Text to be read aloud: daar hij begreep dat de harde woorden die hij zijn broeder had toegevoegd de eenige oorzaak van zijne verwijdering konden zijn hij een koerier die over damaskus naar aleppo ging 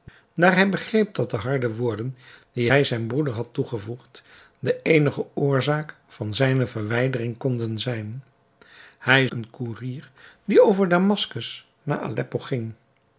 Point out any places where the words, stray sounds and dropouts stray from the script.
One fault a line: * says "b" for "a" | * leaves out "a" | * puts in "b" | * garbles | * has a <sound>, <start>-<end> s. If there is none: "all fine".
all fine